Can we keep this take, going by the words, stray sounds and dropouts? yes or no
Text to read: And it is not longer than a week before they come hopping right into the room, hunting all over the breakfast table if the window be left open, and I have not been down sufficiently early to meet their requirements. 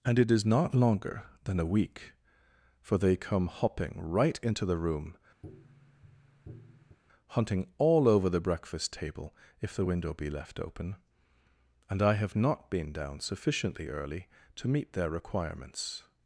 no